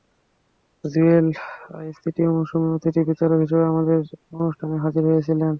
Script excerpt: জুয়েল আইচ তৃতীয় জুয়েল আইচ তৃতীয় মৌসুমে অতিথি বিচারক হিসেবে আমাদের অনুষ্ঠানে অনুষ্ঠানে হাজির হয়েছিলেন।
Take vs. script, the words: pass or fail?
fail